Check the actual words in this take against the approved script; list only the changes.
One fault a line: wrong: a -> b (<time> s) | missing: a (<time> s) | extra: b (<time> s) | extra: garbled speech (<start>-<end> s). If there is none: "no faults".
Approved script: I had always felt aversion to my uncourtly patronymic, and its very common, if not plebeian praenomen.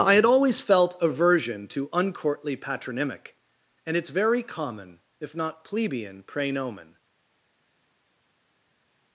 missing: my (1.9 s)